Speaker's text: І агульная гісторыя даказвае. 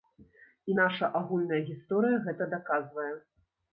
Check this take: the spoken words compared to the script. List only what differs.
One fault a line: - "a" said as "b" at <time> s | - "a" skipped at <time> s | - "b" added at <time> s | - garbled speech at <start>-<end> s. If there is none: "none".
- "наша" added at 0.8 s
- "гэта" added at 2.3 s